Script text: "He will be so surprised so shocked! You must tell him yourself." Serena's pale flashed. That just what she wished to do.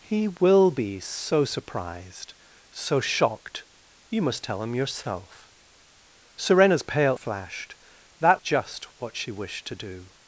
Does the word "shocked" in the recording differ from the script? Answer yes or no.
no